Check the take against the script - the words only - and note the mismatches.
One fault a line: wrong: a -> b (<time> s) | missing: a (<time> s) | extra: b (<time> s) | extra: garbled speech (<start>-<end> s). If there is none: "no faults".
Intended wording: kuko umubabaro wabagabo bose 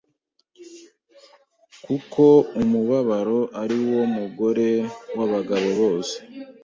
extra: ari wo mugore (3.6 s)